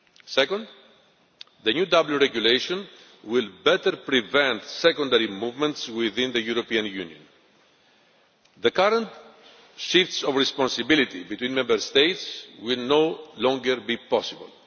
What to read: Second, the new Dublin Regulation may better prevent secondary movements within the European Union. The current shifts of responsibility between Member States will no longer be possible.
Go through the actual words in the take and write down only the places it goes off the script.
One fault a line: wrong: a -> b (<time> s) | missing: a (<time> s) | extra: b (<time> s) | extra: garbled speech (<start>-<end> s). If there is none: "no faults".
wrong: may -> will (3.2 s)